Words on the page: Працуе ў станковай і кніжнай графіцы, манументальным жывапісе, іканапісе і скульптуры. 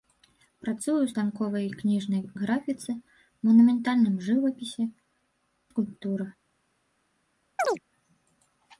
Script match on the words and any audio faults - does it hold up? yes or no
no